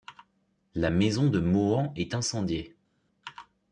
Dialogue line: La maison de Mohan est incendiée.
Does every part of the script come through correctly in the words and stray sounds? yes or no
yes